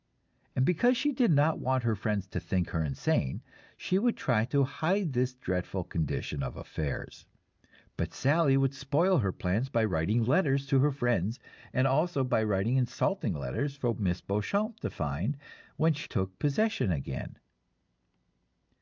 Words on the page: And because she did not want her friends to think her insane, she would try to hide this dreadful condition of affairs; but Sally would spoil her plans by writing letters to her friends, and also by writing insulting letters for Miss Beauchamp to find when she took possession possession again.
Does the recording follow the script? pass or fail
fail